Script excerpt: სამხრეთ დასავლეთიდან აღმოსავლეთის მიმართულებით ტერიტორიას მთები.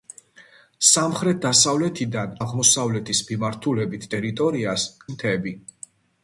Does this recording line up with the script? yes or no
yes